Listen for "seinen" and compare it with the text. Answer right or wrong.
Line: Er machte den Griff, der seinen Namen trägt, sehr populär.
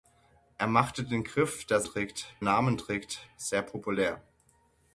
wrong